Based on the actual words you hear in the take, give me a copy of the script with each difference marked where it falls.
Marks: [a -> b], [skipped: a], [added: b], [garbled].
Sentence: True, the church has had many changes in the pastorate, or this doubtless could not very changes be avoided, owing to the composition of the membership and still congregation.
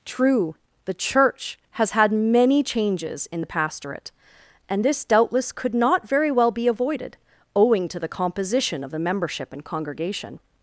True, the church has had many changes in the pastorate, [or -> and] this doubtless could not very [changes -> well] be avoided, owing to the composition of the membership and [skipped: still] congregation.